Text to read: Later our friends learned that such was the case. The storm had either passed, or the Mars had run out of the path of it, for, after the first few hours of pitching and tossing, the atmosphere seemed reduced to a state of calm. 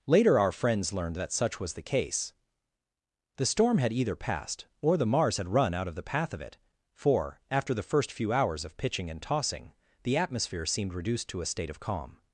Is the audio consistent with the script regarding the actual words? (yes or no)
yes